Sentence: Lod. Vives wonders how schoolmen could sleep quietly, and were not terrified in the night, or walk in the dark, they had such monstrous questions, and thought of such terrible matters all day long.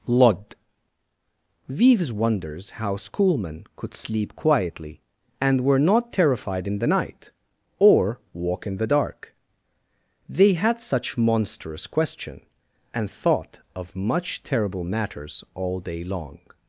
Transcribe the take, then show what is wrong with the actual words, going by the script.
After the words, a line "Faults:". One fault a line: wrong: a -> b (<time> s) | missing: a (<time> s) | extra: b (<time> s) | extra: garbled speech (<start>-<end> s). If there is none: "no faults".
Lod. Vives wonders how schoolmen could sleep quietly, and were not terrified in the night, or walk in the dark, they had such monstrous question, and thought of much terrible matters all day long.
Faults:
wrong: questions -> question (11.9 s)
wrong: such -> much (14.0 s)